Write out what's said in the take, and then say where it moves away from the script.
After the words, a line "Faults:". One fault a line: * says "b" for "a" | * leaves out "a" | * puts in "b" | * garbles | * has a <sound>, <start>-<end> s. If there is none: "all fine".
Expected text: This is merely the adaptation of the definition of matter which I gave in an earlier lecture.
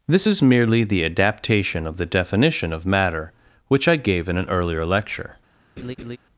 This is merely the adaptation of the definition of matter which I gave in an earlier lecture.
Faults:
* has a laugh, 5.8-6.2 s